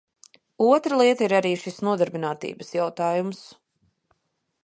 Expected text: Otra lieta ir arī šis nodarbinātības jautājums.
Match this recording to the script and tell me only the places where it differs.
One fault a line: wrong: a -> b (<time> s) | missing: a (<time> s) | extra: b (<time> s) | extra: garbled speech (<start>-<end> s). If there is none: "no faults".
no faults